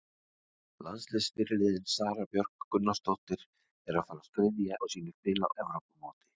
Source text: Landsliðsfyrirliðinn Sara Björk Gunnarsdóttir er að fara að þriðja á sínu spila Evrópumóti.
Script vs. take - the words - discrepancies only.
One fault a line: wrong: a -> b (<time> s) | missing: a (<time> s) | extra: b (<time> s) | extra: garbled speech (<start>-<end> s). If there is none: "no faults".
no faults